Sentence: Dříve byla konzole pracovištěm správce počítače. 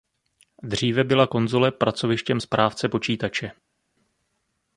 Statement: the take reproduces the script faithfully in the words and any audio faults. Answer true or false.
true